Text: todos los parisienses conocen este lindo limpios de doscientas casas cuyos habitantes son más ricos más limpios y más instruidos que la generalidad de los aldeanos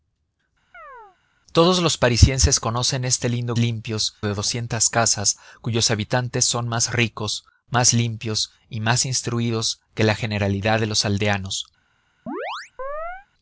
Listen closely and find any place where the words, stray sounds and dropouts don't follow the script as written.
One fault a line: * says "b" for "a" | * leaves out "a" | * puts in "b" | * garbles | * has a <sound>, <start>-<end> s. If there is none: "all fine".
* has a chirp, 0.7-1.2 s
* has a chirp, 12.3-13.3 s